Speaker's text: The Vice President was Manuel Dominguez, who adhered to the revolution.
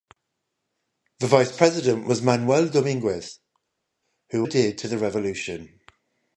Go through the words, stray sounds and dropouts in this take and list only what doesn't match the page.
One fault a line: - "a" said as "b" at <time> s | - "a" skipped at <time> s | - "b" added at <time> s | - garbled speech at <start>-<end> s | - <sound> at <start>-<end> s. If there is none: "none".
none